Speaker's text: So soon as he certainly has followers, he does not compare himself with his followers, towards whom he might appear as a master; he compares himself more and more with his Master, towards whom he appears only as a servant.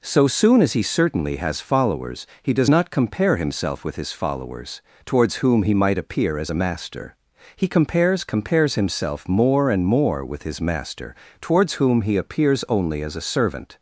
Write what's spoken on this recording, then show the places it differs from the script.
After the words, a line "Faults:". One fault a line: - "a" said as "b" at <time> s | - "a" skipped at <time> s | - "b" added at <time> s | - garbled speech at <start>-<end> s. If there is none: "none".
So soon as he certainly has followers, he does not compare himself with his followers, towards whom he might appear as a master; he compares compares himself more and more with his Master, towards whom he appears only as a servant.
Faults:
- "compares" added at 8.2 s